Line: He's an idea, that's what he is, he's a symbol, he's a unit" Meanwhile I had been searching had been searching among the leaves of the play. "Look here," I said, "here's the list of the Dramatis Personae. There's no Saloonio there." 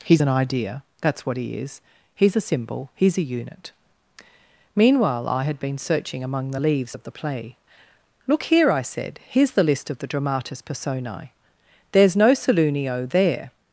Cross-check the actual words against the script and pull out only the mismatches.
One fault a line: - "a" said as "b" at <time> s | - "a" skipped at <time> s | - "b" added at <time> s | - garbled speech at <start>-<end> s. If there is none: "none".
- "had been searching" skipped at 6.2 s